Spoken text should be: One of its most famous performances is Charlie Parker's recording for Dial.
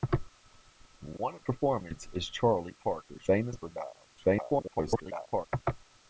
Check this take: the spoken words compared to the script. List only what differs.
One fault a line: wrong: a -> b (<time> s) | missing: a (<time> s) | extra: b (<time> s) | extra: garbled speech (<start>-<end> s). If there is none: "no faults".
missing: its most famous (1.4 s)
wrong: recording -> famous (3.2 s)
extra: garbled speech (4.2-5.5 s)